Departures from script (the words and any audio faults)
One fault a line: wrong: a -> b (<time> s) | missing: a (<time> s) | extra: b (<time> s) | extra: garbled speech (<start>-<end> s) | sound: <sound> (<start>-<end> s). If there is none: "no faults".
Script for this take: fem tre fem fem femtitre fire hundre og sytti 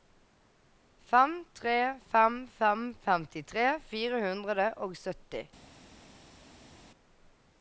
no faults